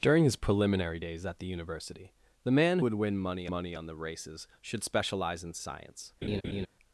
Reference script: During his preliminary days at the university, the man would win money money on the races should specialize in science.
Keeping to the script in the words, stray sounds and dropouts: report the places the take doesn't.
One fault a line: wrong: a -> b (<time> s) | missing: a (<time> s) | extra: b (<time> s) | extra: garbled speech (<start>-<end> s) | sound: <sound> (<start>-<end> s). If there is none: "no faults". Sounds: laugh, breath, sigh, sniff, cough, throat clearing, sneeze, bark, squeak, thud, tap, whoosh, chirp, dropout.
sound: laugh (6.2-6.7 s)